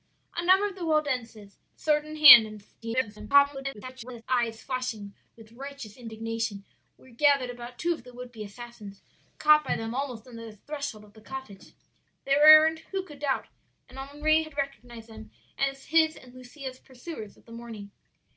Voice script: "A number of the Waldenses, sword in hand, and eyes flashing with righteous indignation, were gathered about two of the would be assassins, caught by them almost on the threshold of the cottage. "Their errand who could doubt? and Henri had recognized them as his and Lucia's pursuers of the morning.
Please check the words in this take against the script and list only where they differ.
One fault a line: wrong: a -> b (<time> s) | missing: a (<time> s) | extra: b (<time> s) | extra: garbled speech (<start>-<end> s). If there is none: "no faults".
extra: garbled speech (2.8-4.2 s)